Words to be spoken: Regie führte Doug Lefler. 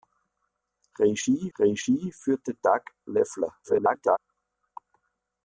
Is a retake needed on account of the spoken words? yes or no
yes